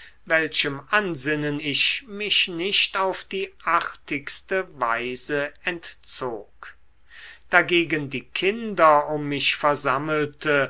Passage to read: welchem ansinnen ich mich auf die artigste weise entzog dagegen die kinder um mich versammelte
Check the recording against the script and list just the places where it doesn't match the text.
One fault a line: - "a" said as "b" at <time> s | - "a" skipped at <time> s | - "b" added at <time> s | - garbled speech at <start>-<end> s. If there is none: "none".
- "nicht" added at 2.5 s